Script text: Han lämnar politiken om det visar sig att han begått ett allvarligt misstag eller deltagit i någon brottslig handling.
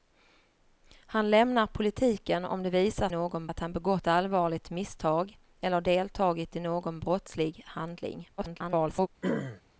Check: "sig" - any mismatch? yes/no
yes